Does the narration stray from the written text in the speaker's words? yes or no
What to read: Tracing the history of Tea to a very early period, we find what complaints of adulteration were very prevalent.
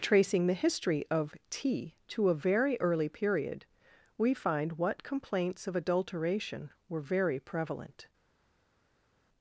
no